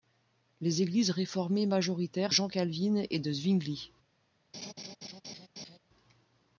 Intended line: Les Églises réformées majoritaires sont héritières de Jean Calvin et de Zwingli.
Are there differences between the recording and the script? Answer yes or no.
yes